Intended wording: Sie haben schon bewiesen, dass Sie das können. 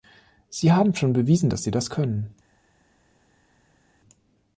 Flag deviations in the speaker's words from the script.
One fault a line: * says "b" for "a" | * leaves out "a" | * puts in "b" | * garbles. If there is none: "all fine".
all fine